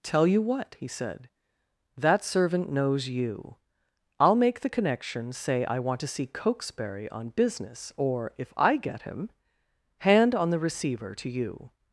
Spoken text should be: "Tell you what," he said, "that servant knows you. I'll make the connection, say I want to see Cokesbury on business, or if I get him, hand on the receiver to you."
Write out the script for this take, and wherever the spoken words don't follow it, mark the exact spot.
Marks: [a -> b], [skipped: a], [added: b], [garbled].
"Tell you what," he said, "that servant knows you. I'll make the connection, say I want to see Cokesbury on business, or if I get him, hand on the receiver to you."